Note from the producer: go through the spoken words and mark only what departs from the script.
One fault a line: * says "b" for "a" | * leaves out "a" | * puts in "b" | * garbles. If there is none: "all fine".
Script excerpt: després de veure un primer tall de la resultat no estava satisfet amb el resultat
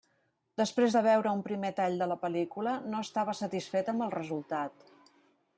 * says "pel·lícula" for "resultat"